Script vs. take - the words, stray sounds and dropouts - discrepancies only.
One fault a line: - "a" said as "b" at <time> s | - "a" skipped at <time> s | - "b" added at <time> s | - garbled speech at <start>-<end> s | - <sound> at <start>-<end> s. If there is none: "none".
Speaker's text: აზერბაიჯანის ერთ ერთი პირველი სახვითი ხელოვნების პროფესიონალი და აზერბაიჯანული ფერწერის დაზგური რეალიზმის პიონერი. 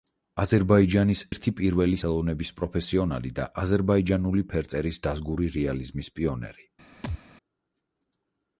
- "ერთ" skipped at 1.2 s
- "სახვითი" skipped at 2.0 s
- thud at 7.0-7.2 s